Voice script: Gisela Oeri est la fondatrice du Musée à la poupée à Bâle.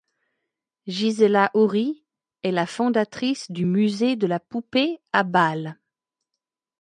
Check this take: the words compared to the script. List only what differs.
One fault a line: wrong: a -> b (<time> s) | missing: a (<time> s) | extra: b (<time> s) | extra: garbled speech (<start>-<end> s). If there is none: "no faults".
wrong: à -> de (4.1 s)